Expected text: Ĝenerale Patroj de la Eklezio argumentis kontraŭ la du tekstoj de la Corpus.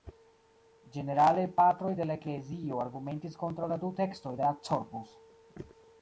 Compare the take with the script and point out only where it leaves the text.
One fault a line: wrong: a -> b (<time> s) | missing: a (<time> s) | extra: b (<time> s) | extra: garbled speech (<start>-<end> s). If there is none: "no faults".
no faults